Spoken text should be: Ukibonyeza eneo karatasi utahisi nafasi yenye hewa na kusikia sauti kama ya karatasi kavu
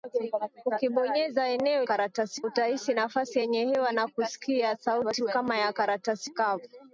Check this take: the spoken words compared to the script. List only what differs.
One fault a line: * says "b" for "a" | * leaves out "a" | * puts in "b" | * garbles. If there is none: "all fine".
all fine